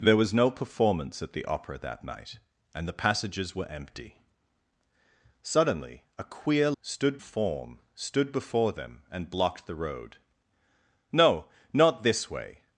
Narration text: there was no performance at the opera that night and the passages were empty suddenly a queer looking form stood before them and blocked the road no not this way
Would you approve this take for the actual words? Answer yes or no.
no